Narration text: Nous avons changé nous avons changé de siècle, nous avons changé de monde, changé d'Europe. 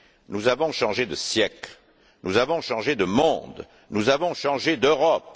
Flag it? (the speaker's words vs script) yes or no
yes